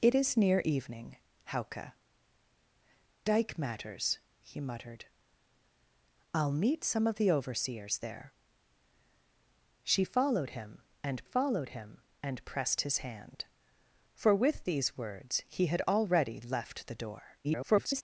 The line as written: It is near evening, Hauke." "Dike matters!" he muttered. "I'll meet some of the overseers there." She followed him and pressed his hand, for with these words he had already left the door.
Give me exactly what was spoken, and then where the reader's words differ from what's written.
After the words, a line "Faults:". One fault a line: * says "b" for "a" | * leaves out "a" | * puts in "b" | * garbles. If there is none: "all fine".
It is near evening, Hauke." "Dike matters!" he muttered. "I'll meet some of the overseers there." She followed him and followed him and pressed his hand, for with these words he had already left the door. [garbled]
Faults:
* puts in "followed him and"
* garbles